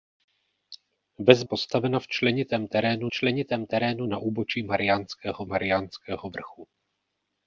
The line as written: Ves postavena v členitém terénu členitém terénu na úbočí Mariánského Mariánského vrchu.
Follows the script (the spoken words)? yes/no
yes